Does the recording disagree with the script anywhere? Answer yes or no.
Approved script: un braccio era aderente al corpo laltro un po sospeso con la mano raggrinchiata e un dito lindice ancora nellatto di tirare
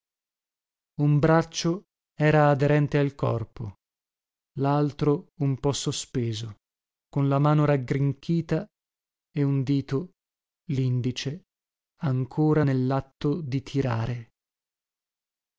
no